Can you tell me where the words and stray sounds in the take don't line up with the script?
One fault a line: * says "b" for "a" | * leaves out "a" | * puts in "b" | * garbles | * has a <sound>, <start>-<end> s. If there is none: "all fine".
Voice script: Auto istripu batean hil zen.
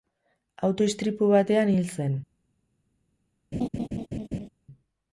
* has a laugh, 3.5-4.5 s